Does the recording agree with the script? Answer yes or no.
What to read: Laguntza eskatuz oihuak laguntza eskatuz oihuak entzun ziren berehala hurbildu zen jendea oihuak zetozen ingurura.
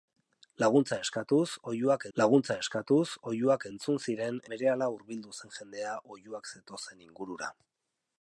yes